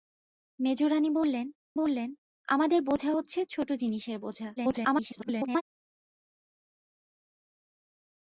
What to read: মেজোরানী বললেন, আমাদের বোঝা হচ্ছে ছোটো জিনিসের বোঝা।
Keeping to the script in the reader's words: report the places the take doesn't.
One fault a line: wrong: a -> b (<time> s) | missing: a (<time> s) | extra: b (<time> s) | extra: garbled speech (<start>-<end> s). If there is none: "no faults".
extra: বললেন (1.7 s)
extra: garbled speech (4.6-5.6 s)